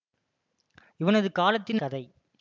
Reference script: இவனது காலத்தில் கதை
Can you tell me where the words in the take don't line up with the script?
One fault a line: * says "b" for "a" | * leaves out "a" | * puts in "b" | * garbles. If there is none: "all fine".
all fine